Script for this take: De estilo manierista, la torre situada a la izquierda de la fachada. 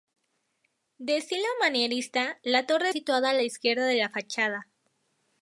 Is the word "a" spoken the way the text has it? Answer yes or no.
yes